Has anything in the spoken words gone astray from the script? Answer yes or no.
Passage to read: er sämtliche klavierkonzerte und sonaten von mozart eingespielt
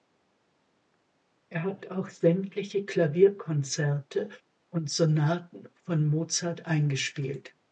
yes